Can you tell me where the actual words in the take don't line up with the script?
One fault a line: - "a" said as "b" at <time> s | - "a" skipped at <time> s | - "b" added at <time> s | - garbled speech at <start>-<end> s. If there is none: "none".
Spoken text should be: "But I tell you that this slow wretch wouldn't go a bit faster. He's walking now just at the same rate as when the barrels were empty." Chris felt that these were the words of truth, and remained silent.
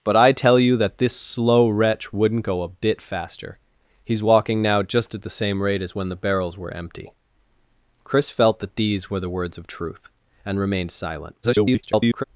- garbled speech at 11.4-12.2 s